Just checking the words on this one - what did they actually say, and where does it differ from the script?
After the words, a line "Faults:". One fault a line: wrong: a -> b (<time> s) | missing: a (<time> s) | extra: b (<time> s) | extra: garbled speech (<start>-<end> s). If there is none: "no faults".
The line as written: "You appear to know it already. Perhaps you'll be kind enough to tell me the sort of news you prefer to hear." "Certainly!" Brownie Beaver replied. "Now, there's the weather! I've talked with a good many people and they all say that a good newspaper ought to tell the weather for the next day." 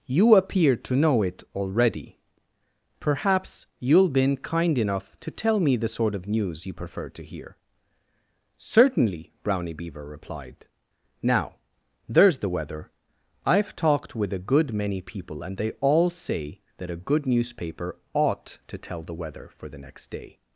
"You appear to know it already. Perhaps you'll been kind enough to tell me the sort of news you prefer to hear." "Certainly!" Brownie Beaver replied. "Now, there's the weather! I've talked with a good many people and they all say that a good newspaper ought to tell the weather for the next day."
Faults:
wrong: be -> been (4.1 s)